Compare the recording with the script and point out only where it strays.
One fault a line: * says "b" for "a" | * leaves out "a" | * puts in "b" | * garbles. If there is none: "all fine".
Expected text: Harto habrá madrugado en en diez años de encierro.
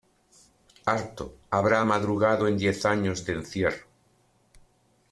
* leaves out "en"